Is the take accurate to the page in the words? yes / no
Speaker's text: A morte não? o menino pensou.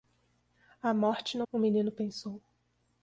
yes